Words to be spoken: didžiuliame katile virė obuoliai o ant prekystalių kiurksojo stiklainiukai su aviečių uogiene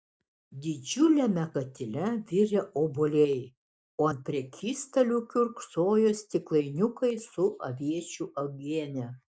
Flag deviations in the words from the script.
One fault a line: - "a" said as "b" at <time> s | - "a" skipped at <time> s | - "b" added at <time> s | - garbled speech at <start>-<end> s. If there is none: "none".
none